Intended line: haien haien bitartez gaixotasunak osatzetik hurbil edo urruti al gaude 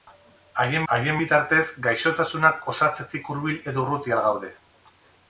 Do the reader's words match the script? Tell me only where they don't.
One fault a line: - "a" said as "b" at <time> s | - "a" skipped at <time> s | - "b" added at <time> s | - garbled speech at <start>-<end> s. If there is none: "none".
none